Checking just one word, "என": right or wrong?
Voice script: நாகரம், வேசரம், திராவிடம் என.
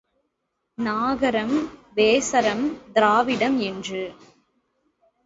wrong